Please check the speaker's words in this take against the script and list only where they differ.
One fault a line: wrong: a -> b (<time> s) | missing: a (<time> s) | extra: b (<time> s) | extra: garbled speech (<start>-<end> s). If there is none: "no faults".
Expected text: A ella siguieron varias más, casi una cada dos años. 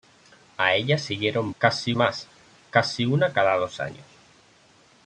wrong: varias -> casi (1.6 s)